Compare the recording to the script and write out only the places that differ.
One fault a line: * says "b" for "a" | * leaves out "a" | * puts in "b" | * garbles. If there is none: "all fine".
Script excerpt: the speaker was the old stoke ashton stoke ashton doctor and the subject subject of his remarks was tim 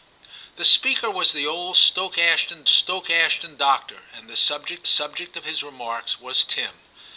all fine